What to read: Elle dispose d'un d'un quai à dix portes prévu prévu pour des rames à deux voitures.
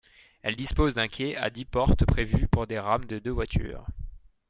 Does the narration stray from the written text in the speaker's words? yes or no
yes